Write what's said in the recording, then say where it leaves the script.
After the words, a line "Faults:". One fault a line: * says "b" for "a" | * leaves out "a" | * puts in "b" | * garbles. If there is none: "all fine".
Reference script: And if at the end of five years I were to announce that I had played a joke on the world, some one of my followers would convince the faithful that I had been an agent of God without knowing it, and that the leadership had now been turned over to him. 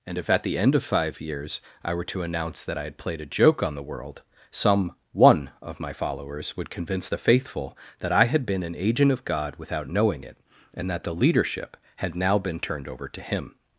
And if at the end of five years I were to announce that I had played a joke on the world, some one of my followers would convince the faithful that I had been an agent of God without knowing it, and that the leadership had now been turned over to him.
Faults:
all fine